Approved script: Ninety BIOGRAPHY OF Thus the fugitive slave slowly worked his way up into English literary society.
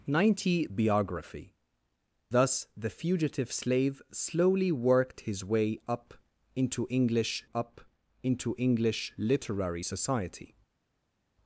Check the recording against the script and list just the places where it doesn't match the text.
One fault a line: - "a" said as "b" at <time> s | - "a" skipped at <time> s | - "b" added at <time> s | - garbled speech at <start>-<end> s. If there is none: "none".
- "OF" skipped at 1.5 s
- "up into English" added at 7.6 s